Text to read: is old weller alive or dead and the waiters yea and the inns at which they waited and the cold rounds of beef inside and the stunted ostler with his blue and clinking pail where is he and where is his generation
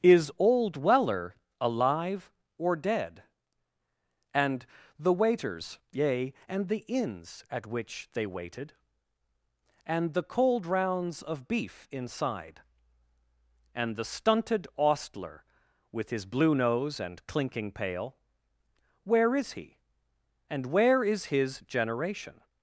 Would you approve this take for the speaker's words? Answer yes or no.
no